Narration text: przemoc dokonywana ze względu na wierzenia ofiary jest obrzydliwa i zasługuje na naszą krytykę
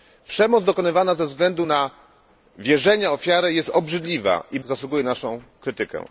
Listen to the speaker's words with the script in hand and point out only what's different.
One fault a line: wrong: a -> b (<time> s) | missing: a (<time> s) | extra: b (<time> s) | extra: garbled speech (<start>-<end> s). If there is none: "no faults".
no faults